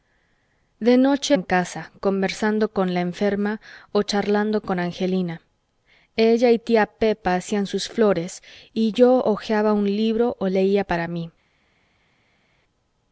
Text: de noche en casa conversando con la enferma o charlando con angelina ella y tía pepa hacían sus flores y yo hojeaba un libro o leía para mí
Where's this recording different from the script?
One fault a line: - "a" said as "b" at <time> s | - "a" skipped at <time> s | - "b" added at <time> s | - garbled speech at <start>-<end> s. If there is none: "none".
none